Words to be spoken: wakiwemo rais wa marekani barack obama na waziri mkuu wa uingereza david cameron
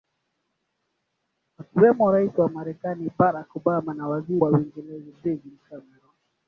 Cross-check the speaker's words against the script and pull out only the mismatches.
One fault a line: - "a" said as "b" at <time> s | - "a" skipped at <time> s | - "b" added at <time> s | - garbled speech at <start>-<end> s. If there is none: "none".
- "mkuu" skipped at 4.4 s